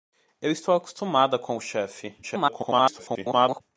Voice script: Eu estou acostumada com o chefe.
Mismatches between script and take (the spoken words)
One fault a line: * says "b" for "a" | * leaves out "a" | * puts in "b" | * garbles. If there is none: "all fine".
* garbles